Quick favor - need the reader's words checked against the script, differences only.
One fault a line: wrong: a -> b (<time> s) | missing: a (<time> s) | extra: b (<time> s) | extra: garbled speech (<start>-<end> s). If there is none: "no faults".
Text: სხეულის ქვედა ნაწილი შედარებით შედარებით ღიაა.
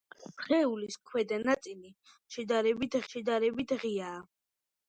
no faults